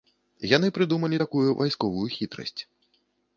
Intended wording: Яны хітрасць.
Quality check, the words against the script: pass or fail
fail